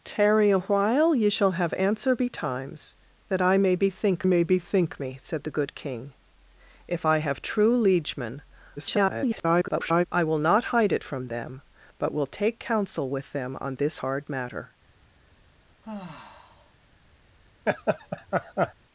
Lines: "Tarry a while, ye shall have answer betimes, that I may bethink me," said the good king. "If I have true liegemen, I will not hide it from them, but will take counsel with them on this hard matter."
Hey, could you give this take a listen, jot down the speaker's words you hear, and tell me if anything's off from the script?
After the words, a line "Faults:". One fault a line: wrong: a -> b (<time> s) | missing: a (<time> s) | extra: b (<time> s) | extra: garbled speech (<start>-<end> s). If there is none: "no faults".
"Tarry a while, ye shall have answer betimes, that I may bethink may bethink me," said the good king. "If I have true liegemen, [garbled] I will not hide it from them, but will take counsel with them on this hard matter."
Faults:
extra: may bethink (4.3 s)
extra: garbled speech (8.8-10.1 s)